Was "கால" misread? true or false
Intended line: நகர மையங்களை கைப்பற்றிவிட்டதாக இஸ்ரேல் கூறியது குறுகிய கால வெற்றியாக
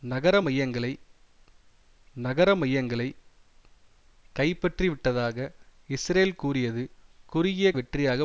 true